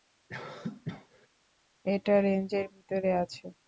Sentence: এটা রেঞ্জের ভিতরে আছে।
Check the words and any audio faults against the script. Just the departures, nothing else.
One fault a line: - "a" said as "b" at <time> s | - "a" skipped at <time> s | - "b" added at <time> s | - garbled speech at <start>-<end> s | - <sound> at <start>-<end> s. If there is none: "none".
- cough at 0.3-1.3 s